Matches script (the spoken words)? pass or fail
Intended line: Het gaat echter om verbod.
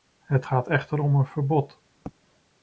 fail